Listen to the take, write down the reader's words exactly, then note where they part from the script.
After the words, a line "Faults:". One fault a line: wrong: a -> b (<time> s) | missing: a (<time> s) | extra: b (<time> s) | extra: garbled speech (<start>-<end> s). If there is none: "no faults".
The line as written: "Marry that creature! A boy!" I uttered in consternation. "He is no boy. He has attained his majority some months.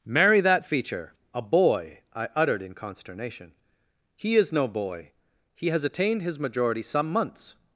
"Marry that feature! A boy!" I uttered in consternation. "He is no boy. He has attained his majority some months.
Faults:
wrong: creature -> feature (0.7 s)